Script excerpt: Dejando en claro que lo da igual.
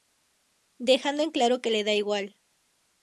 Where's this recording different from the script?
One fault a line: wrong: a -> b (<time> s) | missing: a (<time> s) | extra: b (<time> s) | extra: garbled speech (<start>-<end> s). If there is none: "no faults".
wrong: lo -> le (1.7 s)